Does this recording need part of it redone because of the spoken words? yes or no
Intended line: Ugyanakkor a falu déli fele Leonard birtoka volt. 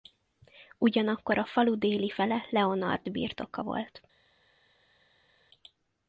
no